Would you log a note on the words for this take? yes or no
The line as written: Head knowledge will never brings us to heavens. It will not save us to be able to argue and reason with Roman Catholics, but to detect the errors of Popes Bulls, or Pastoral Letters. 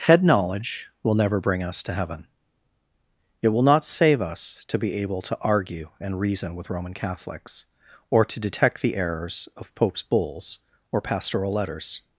yes